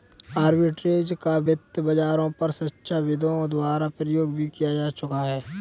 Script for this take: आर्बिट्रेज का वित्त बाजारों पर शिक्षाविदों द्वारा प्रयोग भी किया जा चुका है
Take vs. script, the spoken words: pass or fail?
pass